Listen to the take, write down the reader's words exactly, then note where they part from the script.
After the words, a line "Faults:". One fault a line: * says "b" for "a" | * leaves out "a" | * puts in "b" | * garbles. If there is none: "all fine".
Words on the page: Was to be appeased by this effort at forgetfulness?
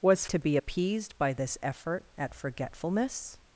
Was to be appeased by this effort at forgetfulness?
Faults:
all fine